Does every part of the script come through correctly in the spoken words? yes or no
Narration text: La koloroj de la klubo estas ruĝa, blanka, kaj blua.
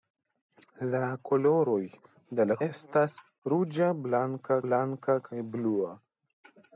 no